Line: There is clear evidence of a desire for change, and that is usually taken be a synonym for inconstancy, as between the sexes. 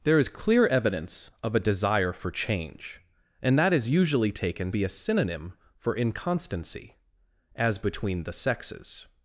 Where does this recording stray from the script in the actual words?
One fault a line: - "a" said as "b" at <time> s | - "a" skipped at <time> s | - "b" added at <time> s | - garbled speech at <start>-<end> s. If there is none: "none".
none